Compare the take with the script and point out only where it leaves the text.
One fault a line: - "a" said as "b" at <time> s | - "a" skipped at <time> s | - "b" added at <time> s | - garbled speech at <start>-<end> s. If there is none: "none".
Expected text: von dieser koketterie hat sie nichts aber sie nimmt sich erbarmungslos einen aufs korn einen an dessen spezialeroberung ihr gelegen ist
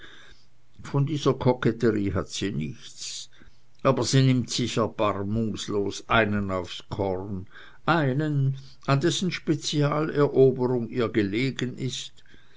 none